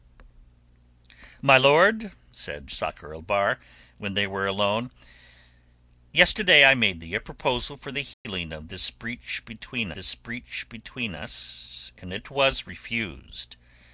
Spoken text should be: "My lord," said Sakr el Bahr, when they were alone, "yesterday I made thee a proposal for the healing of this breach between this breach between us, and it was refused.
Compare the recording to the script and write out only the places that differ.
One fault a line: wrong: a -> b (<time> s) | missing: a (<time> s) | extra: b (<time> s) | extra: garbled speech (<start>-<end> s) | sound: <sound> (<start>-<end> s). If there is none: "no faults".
sound: dropout (8.1-8.3 s)